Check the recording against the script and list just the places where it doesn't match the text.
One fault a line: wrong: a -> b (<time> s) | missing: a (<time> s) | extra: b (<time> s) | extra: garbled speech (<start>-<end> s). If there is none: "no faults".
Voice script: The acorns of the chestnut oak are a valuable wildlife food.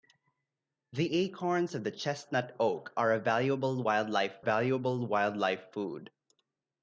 extra: valuable wildlife (4.4 s)